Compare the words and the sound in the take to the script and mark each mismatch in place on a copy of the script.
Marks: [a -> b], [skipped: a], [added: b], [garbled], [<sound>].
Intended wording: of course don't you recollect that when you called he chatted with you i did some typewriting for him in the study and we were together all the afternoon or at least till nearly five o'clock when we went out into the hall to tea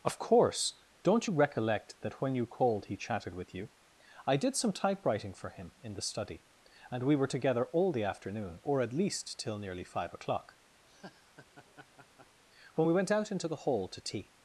of course don't you recollect that when you called he chatted with you i did some typewriting for him in the study and we were together all the afternoon or at least till nearly five o'clock [laugh] when we went out into the hall to tea